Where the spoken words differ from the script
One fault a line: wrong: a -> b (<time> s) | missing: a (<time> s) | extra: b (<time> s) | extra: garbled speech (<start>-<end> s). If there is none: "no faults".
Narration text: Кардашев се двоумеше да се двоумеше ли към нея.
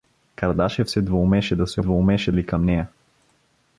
no faults